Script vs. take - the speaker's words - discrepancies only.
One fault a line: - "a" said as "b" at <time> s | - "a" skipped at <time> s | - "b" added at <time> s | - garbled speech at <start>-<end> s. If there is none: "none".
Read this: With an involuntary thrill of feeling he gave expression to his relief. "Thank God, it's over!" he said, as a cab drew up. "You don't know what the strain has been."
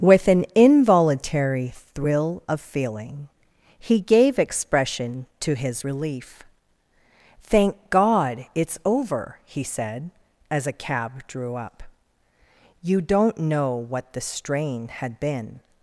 - "has" said as "had" at 14.9 s